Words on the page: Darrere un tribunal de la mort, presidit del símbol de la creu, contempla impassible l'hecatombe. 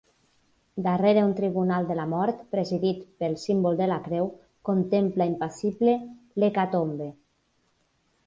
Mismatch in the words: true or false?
true